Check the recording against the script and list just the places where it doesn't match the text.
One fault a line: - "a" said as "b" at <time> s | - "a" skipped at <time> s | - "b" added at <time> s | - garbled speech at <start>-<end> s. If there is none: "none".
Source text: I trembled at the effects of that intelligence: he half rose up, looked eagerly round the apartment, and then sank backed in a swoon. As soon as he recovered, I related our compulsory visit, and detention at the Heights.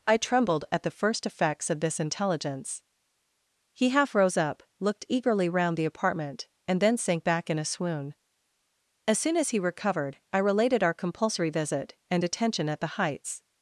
- "first" added at 0.9 s
- "that" said as "this" at 1.8 s
- "backed" said as "back" at 7.2 s